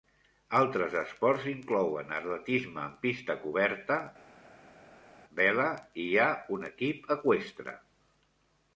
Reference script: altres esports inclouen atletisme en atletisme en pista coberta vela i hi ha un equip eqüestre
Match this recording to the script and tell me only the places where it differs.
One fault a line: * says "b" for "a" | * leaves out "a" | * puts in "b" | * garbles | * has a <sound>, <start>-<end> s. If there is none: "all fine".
* leaves out "atletisme en"